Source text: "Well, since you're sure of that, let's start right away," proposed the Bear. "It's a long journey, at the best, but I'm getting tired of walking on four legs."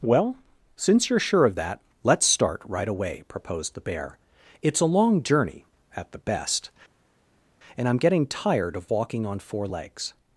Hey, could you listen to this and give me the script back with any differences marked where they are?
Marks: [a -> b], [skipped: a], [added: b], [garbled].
"Well, since you're sure of that, let's start right away," proposed the Bear. "It's a long journey, at the best, [but -> and] I'm getting tired of walking on four legs."